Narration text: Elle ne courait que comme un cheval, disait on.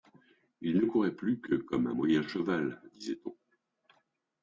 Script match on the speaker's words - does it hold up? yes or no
no